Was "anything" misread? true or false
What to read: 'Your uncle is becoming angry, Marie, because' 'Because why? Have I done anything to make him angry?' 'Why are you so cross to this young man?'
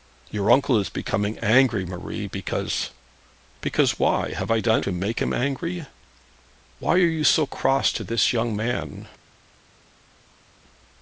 true